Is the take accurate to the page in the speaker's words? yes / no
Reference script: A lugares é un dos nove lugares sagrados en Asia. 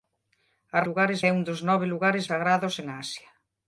yes